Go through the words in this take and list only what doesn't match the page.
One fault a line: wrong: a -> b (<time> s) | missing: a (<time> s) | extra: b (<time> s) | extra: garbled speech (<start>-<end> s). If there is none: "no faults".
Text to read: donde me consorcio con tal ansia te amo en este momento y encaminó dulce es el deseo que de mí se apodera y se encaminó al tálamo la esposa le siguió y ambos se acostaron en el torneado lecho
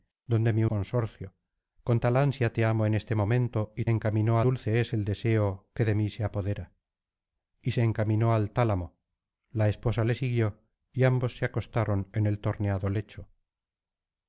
no faults